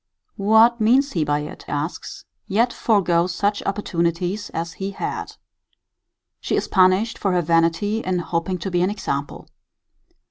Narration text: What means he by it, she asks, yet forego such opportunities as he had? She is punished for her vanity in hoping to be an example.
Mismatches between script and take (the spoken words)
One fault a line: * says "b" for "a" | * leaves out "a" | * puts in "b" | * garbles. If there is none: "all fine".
* leaves out "she"